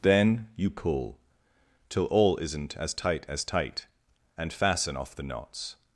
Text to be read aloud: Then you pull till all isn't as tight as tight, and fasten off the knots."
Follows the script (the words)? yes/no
yes